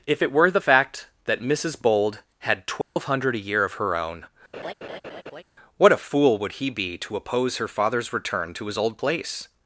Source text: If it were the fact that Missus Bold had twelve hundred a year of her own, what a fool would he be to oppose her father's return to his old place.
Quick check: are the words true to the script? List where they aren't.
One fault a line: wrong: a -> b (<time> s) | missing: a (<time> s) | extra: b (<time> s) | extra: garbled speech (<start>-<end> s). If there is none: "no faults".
no faults